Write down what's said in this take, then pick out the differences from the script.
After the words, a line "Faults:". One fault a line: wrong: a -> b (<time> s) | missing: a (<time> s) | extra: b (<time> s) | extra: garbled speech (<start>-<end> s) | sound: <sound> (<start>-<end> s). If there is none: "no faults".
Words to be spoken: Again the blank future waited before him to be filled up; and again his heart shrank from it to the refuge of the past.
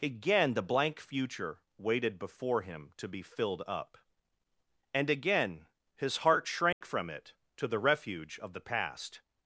Again the blank future waited before him to be filled up; and again his heart shrank from it to the refuge of the past.
Faults:
sound: dropout (6.7-6.8 s)